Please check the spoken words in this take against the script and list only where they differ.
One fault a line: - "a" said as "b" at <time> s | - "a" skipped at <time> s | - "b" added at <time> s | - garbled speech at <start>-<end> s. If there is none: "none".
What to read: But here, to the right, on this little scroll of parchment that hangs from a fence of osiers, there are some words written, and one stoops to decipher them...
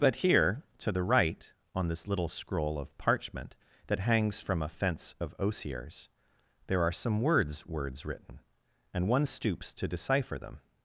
- "words" added at 7.7 s